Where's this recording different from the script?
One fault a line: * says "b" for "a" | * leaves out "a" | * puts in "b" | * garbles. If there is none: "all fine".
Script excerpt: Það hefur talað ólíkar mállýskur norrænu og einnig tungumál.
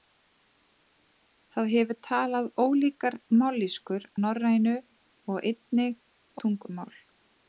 all fine